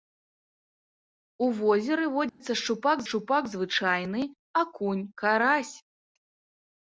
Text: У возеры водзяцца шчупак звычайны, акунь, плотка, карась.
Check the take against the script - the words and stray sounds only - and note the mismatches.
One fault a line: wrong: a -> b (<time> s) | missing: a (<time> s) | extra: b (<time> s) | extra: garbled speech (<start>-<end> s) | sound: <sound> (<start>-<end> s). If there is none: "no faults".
sound: dropout (2.3-2.4 s)
extra: шчупак (3.1 s)
missing: плотка (5.0 s)